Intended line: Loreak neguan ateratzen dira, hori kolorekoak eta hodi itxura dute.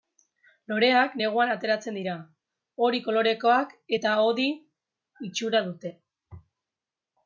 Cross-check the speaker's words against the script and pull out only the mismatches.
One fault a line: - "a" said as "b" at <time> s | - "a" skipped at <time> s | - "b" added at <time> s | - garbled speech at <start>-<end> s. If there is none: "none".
none